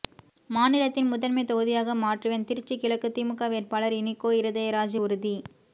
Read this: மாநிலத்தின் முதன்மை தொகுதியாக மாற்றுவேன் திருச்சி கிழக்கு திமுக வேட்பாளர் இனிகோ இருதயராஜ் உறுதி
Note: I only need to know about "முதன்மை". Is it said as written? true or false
true